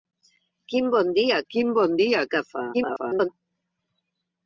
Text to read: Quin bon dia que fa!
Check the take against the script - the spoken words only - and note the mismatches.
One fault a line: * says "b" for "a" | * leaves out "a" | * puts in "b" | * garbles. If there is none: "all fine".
* puts in "quin bon dia"
* garbles